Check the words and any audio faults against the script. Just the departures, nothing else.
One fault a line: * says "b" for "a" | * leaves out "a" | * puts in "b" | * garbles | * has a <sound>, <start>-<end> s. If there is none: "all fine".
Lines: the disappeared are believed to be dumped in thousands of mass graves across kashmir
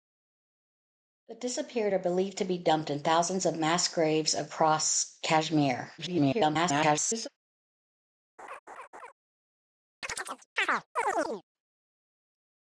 * garbles
* has a laugh, 8.4-9.1 s
* has a chirp, 10.0-11.4 s